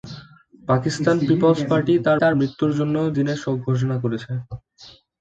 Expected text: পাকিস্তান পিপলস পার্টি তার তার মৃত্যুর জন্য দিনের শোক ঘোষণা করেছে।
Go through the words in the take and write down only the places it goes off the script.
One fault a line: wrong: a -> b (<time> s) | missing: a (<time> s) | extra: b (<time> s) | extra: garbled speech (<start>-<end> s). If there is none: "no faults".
no faults